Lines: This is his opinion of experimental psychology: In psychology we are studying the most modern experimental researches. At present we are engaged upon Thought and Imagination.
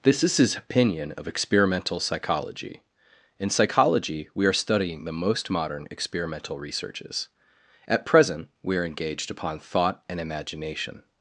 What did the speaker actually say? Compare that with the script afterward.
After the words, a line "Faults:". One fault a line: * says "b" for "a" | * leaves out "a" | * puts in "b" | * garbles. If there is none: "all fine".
This is his opinion of experimental psychology: In psychology we are studying the most modern experimental researches. At present we are engaged upon Thought and Imagination.
Faults:
all fine